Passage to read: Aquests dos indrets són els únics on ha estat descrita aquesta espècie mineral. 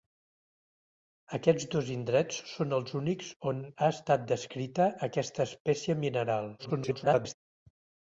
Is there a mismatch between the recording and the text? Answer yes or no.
yes